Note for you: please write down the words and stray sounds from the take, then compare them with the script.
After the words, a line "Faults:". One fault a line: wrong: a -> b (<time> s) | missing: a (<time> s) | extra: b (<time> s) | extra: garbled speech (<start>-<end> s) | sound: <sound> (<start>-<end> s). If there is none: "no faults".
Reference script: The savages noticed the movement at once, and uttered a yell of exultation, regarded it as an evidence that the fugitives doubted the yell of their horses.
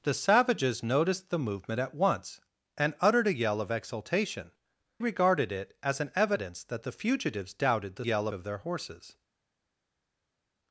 The savages noticed the movement at once, and uttered a yell of exultation, regarded it as an evidence that the fugitives doubted the yell of their horses.
Faults:
no faults